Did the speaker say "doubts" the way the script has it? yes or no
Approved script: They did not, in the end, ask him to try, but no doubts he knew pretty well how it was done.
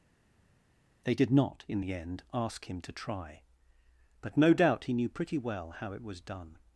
no